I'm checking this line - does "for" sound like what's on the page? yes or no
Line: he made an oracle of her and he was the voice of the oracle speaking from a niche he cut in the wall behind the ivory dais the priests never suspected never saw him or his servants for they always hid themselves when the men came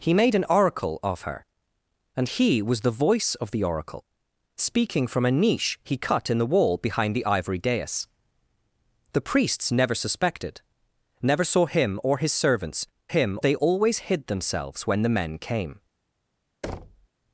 no